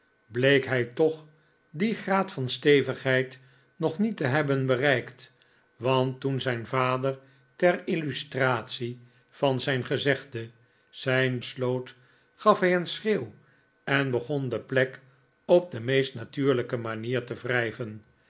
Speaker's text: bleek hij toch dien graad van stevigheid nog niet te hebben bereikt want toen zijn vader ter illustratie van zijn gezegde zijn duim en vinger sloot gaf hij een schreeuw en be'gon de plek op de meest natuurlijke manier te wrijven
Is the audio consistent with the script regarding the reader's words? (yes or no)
no